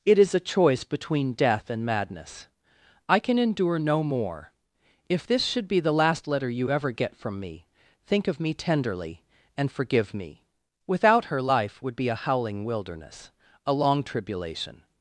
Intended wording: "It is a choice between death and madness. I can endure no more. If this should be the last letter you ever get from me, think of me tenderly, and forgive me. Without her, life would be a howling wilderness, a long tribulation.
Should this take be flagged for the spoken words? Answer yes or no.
no